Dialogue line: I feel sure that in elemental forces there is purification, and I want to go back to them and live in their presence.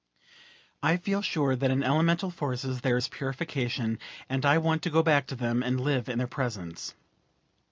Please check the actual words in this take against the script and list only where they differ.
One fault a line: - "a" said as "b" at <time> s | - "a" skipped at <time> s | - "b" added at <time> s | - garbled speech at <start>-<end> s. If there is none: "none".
none